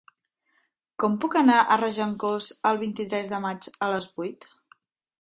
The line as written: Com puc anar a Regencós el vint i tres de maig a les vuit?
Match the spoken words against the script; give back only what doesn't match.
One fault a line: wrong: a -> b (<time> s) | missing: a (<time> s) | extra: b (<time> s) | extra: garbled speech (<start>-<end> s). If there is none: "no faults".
no faults